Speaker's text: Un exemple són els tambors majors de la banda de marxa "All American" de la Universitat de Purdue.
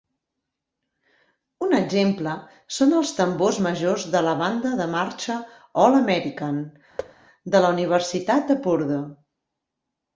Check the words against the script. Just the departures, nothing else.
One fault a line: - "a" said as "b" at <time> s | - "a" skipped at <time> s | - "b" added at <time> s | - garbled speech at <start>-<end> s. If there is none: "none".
none